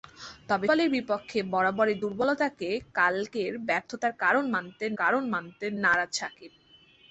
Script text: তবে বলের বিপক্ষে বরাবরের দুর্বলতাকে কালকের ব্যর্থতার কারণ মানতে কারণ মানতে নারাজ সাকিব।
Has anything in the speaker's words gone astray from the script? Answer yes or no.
no